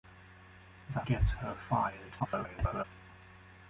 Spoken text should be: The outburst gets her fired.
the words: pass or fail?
fail